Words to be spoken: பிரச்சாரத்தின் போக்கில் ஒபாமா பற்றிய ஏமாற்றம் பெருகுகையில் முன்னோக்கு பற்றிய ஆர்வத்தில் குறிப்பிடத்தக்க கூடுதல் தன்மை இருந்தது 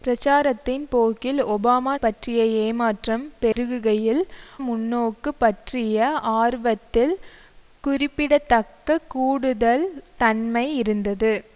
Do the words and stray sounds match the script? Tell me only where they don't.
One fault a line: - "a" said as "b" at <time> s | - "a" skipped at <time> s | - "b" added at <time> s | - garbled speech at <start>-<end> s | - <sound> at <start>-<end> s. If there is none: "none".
- dropout at 3.5-3.6 s